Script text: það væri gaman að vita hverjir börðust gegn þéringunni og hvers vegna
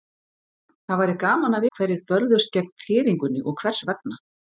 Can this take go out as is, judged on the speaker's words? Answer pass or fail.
fail